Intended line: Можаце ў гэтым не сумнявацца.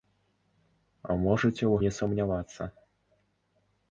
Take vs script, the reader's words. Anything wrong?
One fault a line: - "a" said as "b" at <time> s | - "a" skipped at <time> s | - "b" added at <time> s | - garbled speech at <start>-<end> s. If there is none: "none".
- "гэтым" skipped at 1.8 s